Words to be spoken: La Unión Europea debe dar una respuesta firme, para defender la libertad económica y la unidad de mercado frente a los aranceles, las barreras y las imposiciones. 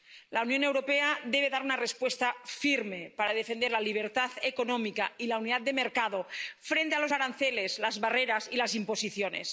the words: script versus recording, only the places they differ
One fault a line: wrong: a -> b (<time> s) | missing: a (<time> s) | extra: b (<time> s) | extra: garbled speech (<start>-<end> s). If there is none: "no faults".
no faults